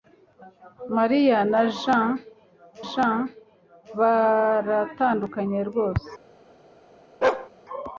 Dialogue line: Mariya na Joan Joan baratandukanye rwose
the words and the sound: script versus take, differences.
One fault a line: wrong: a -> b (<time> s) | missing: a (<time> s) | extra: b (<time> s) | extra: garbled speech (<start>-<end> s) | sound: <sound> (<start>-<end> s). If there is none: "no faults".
sound: bark (7.2-7.5 s)